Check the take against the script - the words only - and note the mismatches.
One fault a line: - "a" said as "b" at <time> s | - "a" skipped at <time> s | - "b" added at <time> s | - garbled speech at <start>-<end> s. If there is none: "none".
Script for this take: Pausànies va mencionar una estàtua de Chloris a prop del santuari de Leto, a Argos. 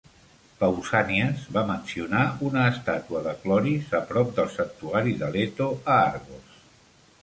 none